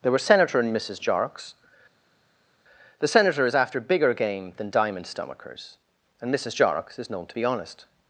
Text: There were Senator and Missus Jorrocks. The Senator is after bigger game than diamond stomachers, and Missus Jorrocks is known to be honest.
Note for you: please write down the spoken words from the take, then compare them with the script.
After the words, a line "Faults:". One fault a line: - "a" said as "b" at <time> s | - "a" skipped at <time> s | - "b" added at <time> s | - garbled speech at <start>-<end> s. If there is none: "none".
There were Senator and Missus Jorrocks. The Senator is after bigger game than diamond stomachers, and Missus Jorrocks is known to be honest.
Faults:
none